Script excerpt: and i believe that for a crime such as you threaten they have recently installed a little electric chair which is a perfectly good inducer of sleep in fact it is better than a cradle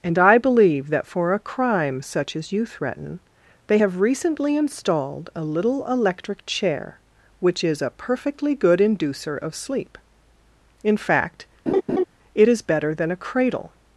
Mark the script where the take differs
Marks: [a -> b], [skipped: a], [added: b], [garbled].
and i believe that for a crime such as you threaten they have recently installed a little electric chair which is a perfectly good inducer of sleep in fact it is better than a cradle